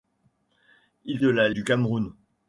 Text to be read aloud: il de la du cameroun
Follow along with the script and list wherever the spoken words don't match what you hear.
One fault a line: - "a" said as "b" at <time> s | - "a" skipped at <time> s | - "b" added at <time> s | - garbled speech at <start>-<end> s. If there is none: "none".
none